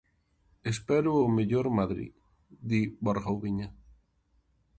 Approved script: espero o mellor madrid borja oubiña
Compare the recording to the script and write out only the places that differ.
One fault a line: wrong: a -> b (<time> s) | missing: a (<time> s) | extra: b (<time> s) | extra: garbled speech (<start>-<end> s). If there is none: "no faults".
extra: di (2.7 s)